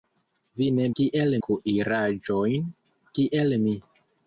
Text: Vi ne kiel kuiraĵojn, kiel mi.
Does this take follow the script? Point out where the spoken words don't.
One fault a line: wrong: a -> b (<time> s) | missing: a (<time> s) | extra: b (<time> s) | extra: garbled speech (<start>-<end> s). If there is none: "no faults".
no faults